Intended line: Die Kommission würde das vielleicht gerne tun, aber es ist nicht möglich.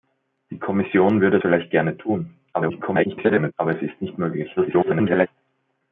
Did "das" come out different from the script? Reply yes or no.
yes